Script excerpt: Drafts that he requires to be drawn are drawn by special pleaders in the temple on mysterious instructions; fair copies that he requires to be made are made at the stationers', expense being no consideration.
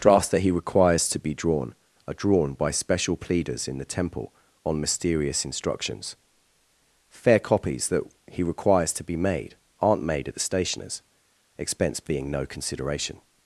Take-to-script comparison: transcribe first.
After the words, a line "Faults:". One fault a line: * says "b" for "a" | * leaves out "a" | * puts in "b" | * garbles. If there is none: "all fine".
Drafts that he requires to be drawn are drawn by special pleaders in the temple on mysterious instructions; fair copies that he requires to be made aren't made at the stationers', expense being no consideration.
Faults:
* says "aren't" for "are"